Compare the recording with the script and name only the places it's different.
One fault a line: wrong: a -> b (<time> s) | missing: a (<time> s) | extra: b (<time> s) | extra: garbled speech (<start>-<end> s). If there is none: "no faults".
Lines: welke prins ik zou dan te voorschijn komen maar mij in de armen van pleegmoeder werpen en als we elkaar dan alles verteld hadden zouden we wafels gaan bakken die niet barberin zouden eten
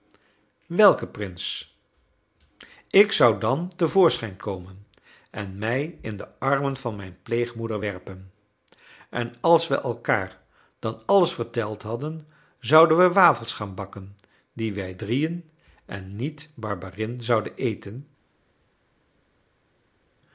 wrong: maar -> en (5.3 s)
extra: mijn (7.0 s)
extra: wij drieën en (14.7 s)